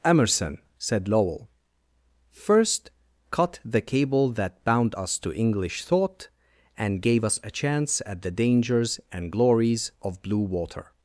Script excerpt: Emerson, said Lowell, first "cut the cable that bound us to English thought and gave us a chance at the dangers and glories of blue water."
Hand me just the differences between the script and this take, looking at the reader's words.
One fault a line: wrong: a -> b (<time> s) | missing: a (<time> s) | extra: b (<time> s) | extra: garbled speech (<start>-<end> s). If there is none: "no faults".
no faults